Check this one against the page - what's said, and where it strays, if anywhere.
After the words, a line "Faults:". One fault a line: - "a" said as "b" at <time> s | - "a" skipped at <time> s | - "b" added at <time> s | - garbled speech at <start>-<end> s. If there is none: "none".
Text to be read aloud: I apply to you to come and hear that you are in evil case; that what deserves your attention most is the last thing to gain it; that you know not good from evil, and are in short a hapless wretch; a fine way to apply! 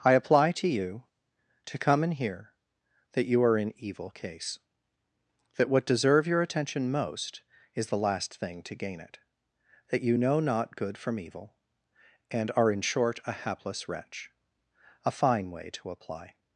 I apply to you to come and hear that you are in evil case; that what deserve your attention most is the last thing to gain it; that you know not good from evil, and are in short a hapless wretch; a fine way to apply!
Faults:
- "deserves" said as "deserve" at 5.8 s